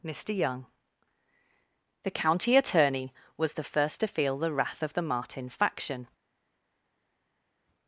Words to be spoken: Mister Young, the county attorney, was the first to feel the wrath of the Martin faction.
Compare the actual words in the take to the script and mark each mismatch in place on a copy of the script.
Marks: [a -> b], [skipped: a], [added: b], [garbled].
Mister Young, the county attorney, was the first to feel the wrath of the Martin faction.